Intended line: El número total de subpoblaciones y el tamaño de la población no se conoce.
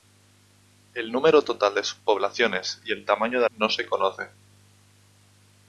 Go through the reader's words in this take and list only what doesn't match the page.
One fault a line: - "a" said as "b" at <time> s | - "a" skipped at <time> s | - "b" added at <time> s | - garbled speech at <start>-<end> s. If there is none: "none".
- "la población" skipped at 3.5 s